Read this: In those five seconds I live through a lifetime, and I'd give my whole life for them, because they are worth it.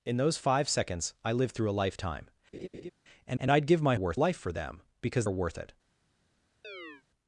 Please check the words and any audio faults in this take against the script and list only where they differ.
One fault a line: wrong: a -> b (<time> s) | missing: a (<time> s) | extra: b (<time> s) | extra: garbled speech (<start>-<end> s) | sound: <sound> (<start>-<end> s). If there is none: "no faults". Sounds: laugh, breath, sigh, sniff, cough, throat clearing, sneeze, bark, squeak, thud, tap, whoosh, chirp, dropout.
sound: laugh (2.5-2.9 s)
extra: and (3.4 s)
wrong: whole -> worth (3.9 s)
missing: they (5.3 s)
sound: chirp (6.6-7.0 s)